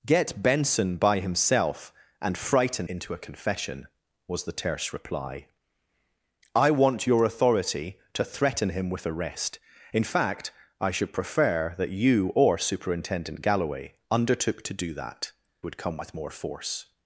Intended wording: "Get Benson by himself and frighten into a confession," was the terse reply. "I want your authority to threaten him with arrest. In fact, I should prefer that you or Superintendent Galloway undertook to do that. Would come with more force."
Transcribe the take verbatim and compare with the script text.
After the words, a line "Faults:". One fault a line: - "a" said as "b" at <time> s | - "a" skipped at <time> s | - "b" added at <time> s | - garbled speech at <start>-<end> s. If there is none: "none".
"Get Benson by himself and frighten into a confession," was the terse reply. "I want your authority to threaten him with arrest. In fact, I should prefer that you or Superintendent Galloway undertook to do that. Would come with more force."
Faults:
none